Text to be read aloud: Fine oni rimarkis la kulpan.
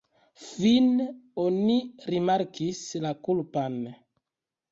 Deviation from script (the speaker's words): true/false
false